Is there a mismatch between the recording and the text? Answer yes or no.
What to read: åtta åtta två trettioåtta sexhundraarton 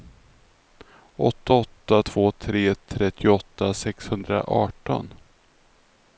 yes